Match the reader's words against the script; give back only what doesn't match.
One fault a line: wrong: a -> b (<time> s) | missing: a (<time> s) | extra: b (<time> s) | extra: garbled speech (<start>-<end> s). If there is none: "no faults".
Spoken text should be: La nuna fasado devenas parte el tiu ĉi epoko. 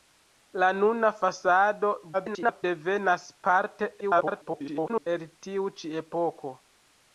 extra: garbled speech (2.1-2.6 s)
extra: garbled speech (4.0-5.1 s)